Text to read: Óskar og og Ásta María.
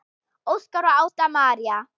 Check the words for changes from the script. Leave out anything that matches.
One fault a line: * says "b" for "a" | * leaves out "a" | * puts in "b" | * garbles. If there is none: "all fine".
* leaves out "og"